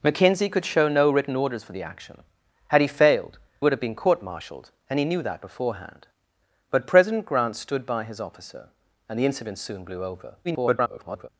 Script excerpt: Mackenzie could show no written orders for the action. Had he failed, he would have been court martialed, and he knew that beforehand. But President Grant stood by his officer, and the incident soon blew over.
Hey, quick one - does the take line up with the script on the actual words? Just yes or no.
no